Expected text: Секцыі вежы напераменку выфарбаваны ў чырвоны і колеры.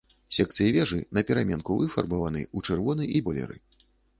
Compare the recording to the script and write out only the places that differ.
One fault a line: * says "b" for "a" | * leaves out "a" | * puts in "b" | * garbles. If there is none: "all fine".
all fine